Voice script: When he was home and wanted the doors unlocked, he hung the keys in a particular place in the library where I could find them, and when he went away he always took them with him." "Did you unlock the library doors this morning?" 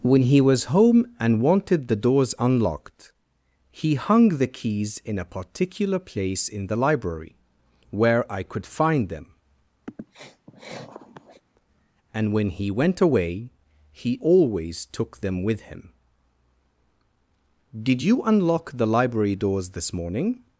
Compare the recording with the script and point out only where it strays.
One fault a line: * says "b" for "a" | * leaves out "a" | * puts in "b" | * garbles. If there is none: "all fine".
all fine